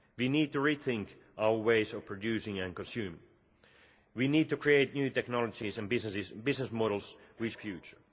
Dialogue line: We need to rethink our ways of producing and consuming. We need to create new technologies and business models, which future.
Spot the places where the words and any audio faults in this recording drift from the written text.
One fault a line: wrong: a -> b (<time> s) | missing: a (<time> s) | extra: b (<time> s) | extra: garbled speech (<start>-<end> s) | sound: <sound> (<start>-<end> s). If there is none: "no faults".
no faults